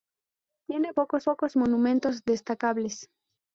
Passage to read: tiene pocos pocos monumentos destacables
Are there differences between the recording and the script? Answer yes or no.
no